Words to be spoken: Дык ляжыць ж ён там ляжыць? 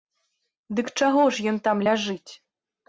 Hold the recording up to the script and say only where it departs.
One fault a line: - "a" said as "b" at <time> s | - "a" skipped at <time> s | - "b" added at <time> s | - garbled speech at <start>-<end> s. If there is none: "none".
- "ляжыць" said as "чаго" at 1.0 s